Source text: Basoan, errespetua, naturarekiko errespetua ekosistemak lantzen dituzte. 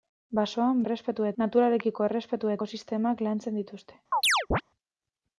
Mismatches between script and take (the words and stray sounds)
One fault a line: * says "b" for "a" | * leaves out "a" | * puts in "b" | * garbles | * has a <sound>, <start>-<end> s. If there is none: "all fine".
* has a chirp, 4.1-4.6 s